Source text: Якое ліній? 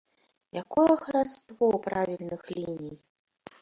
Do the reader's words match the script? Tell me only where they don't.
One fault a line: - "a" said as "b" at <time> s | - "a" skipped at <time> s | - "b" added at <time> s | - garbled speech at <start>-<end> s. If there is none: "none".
- "хараство правільных" added at 0.9 s